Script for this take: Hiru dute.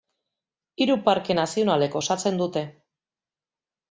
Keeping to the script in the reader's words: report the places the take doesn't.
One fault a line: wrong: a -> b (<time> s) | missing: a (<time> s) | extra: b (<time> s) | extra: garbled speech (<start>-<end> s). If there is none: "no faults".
extra: parke nazionalek osatzen (1.1 s)